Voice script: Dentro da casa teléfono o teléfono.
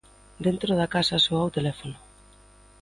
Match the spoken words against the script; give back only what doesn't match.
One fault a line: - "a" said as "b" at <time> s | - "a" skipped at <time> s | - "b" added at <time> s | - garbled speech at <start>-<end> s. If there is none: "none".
- "teléfono" said as "soa" at 1.2 s